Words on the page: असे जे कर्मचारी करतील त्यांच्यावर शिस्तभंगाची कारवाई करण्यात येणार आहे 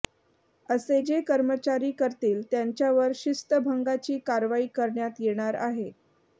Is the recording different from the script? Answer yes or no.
no